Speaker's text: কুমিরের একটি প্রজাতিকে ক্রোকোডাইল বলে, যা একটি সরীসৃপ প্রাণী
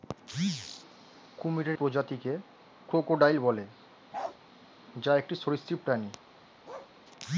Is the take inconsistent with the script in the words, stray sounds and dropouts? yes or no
yes